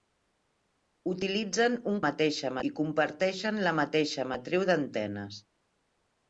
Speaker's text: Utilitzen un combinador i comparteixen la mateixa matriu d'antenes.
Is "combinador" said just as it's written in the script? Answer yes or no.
no